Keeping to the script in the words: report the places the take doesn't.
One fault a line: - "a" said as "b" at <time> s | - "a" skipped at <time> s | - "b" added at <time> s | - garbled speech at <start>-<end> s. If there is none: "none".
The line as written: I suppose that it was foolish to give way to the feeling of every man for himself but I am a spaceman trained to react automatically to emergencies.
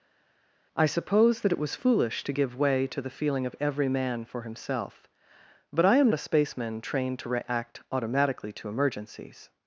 none